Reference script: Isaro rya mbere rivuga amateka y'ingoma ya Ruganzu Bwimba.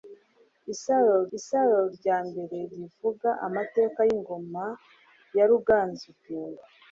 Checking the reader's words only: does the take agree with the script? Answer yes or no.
no